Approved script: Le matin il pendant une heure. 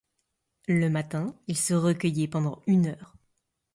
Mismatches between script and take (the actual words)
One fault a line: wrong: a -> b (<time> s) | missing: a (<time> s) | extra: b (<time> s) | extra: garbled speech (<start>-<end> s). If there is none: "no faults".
extra: se recueillait (1.6 s)